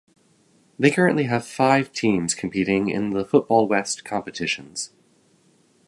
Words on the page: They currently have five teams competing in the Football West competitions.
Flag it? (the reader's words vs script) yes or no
no